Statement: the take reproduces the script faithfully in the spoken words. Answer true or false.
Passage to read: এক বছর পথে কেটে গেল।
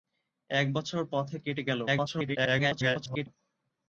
false